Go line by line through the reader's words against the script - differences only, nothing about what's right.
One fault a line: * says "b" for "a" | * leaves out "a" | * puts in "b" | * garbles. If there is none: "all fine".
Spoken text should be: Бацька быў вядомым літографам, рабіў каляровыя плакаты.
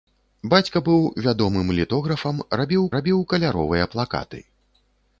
* puts in "рабіў"